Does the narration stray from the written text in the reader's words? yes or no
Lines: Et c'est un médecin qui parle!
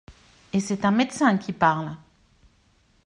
no